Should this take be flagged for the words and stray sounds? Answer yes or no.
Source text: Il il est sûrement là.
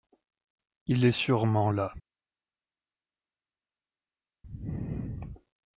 yes